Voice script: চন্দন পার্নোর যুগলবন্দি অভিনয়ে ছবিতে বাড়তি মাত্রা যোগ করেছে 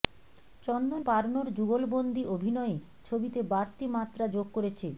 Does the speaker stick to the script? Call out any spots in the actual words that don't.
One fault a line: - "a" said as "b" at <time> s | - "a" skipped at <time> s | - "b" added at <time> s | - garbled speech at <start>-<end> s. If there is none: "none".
none